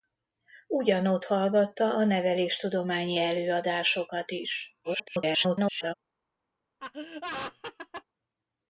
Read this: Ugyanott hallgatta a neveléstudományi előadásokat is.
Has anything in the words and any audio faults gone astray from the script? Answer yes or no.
yes